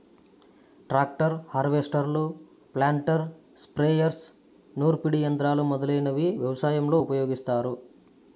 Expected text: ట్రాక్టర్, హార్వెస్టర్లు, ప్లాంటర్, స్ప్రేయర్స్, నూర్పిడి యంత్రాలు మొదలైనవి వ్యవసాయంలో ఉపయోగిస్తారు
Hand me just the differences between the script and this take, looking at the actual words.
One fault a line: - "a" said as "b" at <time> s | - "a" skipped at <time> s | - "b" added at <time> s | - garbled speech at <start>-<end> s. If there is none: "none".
none